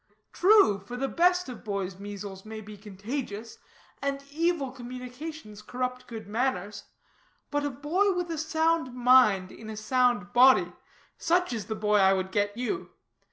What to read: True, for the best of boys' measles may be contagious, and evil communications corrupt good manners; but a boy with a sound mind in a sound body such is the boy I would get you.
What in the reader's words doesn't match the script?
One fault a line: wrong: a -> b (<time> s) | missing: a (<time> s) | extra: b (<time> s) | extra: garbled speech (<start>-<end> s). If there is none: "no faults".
no faults